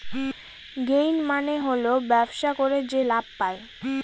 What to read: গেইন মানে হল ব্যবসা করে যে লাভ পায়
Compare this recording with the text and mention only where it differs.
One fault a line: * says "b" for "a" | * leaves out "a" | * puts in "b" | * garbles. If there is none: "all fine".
all fine